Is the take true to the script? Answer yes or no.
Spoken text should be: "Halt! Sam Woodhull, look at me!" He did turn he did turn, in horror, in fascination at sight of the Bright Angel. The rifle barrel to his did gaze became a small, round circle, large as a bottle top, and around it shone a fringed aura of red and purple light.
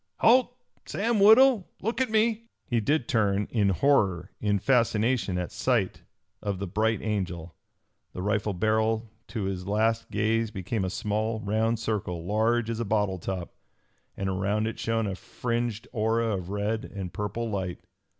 no